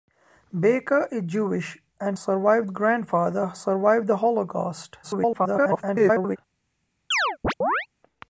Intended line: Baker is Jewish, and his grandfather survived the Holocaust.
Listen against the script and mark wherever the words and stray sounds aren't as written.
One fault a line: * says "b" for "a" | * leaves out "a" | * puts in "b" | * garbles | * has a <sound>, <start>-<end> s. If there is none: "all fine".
* says "survived" for "his"
* garbles
* has a chirp, 7.1-7.9 s